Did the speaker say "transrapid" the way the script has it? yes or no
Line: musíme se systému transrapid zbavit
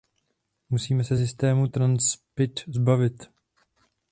yes